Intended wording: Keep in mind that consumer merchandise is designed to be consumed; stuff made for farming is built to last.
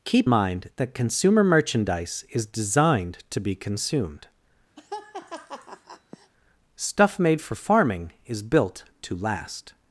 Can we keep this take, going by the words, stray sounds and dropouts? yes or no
no